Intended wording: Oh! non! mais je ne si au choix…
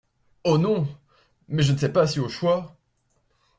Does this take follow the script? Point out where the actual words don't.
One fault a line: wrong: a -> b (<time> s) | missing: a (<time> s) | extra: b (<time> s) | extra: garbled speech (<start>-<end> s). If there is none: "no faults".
extra: sais pas (1.8 s)